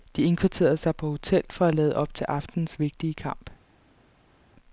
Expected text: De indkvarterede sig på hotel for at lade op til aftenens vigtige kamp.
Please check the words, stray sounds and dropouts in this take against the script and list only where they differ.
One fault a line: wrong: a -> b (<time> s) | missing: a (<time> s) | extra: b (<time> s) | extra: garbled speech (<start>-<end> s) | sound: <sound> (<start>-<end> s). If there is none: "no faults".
no faults